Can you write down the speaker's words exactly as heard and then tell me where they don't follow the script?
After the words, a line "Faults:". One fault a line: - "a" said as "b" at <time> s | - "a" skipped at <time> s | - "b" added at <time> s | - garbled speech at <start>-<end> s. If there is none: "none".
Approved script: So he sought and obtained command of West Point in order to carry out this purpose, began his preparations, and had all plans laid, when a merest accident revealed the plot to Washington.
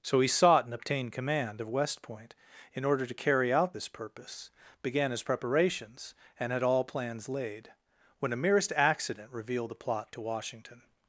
So he sought and obtained command of West Point in order to carry out this purpose, began his preparations, and had all plans laid, when a merest accident revealed the plot to Washington.
Faults:
none